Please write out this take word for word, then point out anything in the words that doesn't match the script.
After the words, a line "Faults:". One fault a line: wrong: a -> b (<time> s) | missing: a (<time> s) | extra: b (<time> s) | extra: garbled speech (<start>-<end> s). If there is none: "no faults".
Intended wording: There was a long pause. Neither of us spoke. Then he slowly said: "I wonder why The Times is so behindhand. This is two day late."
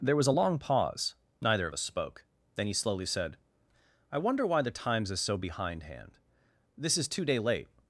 There was a long pause. Neither of us spoke. Then he slowly said: "I wonder why The Times is so behindhand. This is two day late."
Faults:
no faults